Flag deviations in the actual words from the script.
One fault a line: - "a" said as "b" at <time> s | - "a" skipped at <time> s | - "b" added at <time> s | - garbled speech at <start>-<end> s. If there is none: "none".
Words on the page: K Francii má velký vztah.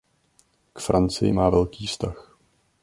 none